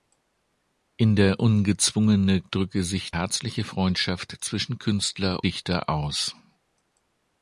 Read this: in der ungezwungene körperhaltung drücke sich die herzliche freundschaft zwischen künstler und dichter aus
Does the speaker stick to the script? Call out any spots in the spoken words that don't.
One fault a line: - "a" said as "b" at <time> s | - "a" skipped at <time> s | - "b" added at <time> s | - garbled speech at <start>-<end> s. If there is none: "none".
- "körperhaltung" skipped at 2.4 s
- "die" skipped at 3.1 s
- "und" skipped at 5.4 s